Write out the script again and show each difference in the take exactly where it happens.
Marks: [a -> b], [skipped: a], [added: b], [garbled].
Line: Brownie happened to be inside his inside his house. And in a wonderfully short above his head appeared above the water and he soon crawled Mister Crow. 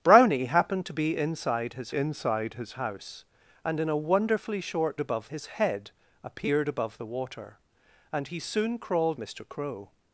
Brownie happened to be inside his inside his house. And in a wonderfully short above his head appeared above the water and he soon crawled Mister Crow.